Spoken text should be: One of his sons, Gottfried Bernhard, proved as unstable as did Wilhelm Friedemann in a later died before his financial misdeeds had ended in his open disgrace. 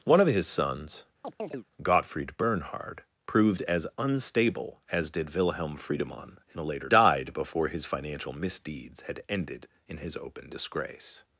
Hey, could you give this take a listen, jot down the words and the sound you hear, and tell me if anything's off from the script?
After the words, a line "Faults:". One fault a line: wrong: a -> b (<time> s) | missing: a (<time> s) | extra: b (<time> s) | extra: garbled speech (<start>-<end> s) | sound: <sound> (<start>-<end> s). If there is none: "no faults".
One of his sons, Gottfried Bernhard, proved as unstable as did Wilhelm Friedemann in a later died before his financial misdeeds had ended in his open disgrace.
Faults:
sound: chirp (1.2-1.7 s)